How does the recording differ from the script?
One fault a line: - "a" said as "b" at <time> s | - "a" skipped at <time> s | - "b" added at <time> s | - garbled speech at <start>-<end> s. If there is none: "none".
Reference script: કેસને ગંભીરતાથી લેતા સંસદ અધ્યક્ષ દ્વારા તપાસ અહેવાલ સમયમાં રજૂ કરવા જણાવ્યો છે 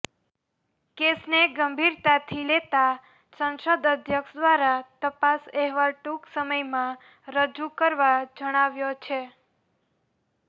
- "ટૂંક" added at 6.0 s